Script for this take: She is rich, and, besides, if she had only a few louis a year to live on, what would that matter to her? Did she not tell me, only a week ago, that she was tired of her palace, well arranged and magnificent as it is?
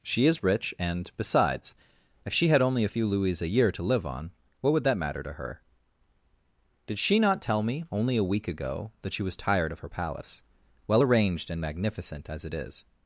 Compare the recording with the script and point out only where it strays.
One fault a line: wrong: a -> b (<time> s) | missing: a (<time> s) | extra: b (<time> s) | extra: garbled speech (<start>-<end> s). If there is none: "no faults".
no faults